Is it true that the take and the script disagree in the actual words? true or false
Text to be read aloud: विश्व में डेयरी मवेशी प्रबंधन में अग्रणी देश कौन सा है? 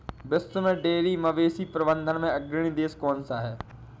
false